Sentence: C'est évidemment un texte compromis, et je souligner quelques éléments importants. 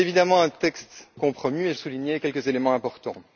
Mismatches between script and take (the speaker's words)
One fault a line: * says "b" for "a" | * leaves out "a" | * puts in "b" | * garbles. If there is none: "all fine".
all fine